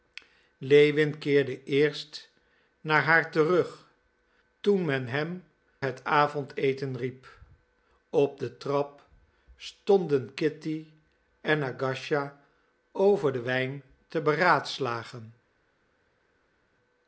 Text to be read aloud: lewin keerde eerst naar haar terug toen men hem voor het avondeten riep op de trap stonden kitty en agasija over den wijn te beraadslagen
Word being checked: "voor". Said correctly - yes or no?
no